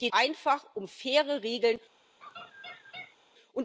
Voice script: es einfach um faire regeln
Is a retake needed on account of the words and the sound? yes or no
yes